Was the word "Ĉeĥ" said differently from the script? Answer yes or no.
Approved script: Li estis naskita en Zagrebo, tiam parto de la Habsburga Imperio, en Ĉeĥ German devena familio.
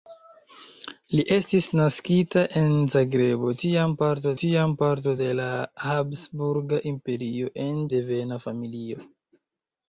yes